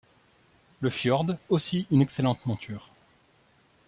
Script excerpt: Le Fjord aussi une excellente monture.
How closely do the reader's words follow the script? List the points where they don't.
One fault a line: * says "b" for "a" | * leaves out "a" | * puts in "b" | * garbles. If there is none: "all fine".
all fine